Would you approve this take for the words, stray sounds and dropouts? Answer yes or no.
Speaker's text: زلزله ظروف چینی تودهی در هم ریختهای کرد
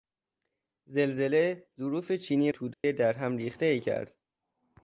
no